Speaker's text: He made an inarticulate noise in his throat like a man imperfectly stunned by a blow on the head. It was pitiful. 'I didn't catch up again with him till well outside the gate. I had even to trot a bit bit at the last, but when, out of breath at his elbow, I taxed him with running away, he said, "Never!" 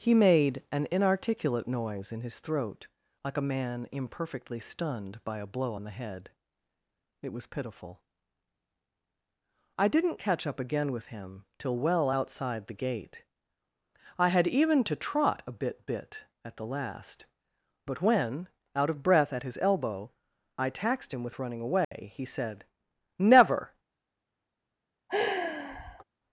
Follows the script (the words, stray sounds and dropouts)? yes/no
no